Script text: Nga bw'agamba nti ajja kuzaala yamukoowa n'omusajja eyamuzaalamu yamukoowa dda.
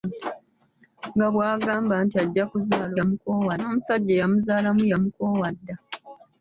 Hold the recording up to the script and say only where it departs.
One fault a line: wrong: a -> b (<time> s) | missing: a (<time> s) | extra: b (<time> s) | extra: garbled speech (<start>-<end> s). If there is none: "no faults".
no faults